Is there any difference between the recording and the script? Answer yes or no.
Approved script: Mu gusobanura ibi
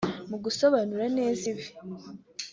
yes